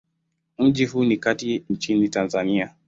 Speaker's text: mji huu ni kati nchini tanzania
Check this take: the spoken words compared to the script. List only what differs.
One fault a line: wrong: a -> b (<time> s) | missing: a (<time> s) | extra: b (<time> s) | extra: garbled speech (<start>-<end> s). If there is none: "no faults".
no faults